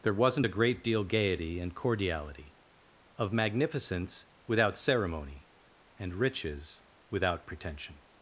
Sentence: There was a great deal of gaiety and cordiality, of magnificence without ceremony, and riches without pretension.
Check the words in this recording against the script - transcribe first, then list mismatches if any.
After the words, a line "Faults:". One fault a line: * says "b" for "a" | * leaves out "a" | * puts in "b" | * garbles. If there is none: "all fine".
There wasn't a great deal gaiety and cordiality, of magnificence without ceremony, and riches without pretension.
Faults:
* says "wasn't" for "was"
* leaves out "of"